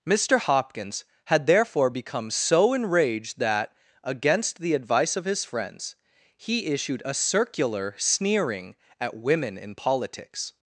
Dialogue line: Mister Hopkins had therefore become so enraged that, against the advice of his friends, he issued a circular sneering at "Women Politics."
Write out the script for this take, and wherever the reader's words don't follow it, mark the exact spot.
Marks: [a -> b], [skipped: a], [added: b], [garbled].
Mister Hopkins had therefore become so enraged that, against the advice of his friends, he issued a circular sneering at "Women [added: in] Politics."